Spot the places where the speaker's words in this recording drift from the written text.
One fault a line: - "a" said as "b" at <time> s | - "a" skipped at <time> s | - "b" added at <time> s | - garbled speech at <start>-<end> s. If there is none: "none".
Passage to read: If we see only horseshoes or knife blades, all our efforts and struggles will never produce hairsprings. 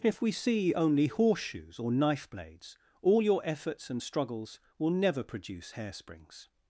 - "our" said as "your" at 3.2 s